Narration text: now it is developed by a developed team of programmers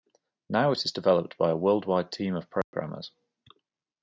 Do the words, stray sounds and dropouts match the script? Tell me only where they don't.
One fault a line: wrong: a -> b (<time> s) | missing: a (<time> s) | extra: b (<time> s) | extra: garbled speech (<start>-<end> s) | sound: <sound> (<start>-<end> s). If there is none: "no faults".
wrong: developed -> worldwide (1.6 s)
sound: dropout (2.6-2.7 s)